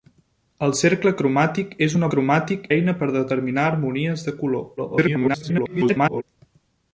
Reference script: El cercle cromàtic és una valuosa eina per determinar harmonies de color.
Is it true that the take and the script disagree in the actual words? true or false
true